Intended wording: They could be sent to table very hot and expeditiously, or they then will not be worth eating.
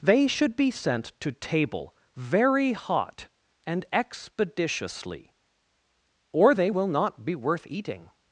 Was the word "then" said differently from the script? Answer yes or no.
yes